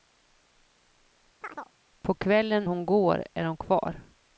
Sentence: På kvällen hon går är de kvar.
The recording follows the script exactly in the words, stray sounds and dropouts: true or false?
false